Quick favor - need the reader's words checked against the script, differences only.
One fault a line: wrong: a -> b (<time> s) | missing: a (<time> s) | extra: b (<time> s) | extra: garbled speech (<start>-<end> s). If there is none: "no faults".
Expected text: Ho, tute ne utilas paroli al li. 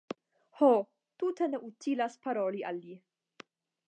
no faults